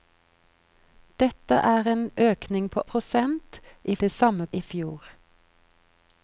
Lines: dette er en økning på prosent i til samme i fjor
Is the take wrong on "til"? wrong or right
right